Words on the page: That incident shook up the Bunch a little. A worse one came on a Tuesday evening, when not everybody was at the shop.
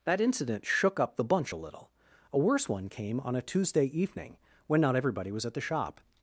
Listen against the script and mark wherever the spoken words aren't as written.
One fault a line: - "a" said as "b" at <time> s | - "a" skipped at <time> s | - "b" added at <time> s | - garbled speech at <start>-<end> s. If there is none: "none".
none